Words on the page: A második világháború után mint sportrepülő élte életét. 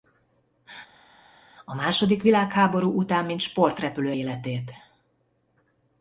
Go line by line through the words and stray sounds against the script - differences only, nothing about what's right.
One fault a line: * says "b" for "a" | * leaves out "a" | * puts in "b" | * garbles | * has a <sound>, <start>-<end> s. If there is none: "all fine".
* leaves out "élte"